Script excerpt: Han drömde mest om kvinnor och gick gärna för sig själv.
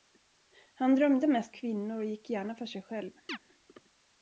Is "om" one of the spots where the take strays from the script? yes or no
yes